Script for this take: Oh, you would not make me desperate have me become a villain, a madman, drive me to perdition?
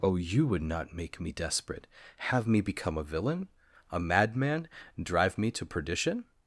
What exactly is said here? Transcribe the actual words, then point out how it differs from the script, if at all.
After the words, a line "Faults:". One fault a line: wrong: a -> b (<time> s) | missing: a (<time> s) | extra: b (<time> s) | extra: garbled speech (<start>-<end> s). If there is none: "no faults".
Oh, you would not make me desperate have me become a villain, a madman, drive me to perdition?
Faults:
no faults